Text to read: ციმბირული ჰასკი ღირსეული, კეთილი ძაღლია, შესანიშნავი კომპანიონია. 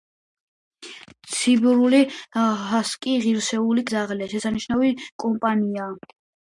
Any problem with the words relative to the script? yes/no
yes